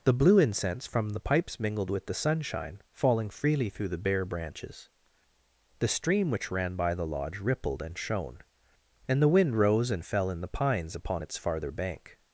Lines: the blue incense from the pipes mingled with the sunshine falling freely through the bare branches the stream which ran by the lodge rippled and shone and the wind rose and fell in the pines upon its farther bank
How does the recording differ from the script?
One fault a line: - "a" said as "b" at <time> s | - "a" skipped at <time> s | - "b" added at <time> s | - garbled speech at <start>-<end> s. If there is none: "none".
none